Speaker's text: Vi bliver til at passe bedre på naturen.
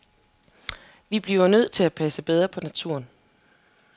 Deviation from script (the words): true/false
true